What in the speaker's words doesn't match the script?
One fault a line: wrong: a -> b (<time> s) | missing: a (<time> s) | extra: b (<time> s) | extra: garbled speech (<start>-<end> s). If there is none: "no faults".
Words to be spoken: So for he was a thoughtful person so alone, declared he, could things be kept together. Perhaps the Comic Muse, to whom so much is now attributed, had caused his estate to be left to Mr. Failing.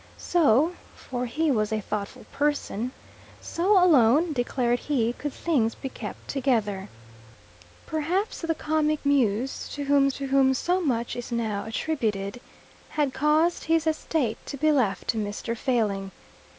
extra: to whom (10.1 s)